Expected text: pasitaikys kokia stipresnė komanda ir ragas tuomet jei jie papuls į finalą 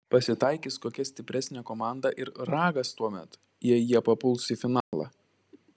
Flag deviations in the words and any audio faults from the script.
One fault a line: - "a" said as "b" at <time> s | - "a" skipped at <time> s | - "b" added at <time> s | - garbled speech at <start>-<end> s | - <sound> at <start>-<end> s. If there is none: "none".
- dropout at 4.8-4.9 s